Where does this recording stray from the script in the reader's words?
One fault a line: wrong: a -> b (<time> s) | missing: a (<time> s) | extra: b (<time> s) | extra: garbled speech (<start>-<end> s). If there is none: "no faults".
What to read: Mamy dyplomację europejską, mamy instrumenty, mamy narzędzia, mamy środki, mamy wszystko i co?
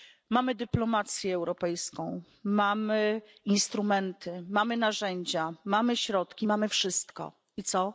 no faults